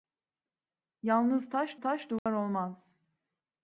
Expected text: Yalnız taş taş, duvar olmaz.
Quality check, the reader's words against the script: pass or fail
pass